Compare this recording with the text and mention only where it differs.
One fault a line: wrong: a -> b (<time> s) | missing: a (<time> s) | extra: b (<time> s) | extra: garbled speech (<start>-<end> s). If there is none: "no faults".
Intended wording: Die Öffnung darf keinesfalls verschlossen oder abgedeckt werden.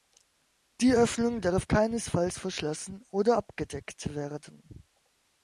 no faults